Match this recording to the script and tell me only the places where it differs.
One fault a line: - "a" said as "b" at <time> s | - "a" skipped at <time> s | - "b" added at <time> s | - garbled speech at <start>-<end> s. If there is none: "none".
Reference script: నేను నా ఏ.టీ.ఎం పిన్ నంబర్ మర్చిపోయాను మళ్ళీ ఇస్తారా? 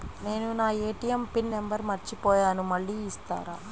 none